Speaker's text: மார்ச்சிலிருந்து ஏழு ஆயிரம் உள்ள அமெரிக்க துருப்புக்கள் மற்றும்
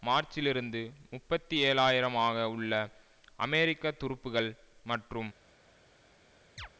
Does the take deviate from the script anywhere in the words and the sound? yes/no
yes